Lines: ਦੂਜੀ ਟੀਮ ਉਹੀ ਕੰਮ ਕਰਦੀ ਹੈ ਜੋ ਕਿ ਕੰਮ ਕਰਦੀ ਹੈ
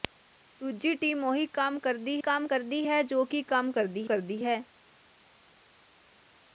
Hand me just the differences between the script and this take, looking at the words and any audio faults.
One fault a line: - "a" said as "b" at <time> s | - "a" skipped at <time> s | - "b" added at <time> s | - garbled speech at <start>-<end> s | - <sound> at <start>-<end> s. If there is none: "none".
- "ਕੰਮ ਕਰਦੀ" added at 2.2 s
- "ਕਰਦੀ" added at 4.0 s